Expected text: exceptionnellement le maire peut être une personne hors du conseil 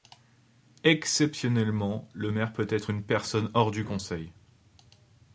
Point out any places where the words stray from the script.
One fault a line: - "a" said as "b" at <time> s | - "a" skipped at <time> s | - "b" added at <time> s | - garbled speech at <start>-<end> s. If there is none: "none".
none